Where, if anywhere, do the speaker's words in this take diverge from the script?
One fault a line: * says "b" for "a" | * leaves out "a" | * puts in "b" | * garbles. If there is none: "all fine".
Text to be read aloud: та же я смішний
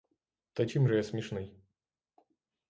* puts in "чим"